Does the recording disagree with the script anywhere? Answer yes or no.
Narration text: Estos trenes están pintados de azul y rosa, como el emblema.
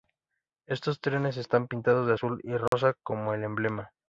no